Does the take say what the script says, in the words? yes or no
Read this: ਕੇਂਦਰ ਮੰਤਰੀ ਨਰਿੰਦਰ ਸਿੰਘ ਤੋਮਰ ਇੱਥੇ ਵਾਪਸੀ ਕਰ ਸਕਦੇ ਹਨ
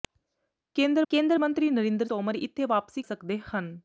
no